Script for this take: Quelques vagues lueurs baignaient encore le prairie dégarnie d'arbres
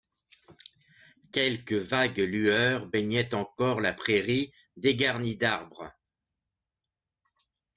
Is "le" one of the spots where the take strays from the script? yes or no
yes